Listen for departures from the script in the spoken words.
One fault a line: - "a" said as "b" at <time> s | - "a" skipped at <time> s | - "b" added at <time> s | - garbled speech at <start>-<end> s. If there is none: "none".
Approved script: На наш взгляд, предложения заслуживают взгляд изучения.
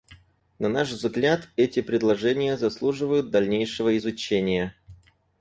- "эти" added at 1.6 s
- "взгляд" said as "дальнейшего" at 3.3 s